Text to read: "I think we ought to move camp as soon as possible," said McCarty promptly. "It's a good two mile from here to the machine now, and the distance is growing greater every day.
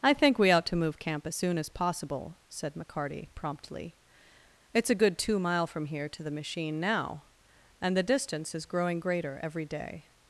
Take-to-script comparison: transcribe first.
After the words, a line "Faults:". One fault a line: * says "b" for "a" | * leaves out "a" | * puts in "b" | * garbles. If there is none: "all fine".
"I think we ought to move camp as soon as possible," said McCarty promptly. "It's a good two mile from here to the machine now, and the distance is growing greater every day.
Faults:
all fine